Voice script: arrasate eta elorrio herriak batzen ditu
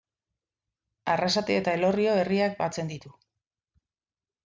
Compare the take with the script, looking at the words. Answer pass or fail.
pass